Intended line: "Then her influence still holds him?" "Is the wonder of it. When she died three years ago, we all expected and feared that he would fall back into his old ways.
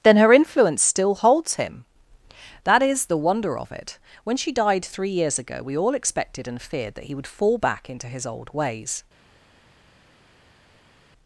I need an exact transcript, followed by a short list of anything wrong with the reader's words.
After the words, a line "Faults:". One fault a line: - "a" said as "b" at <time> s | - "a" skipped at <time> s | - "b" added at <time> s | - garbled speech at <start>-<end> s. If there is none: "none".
"Then her influence still holds him?" "That is the wonder of it. When she died three years ago, we all expected and feared that he would fall back into his old ways.
Faults:
- "That" added at 2.6 s